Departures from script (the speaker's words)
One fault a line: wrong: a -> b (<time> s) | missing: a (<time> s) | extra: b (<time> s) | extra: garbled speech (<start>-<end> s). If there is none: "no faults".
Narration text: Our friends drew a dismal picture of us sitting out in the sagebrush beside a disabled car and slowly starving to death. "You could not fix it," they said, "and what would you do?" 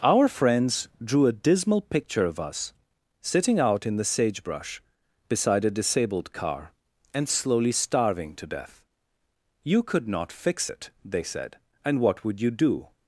no faults